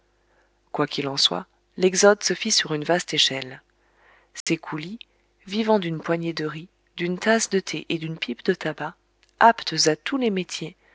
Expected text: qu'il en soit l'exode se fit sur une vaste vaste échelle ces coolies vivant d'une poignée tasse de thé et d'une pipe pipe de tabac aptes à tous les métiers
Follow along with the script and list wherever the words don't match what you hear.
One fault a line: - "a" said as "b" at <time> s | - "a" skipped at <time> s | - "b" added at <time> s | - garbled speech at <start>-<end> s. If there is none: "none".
- "vaste" skipped at 3.1 s
- "de riz d'une" added at 6.3 s
- "pipe" skipped at 8.4 s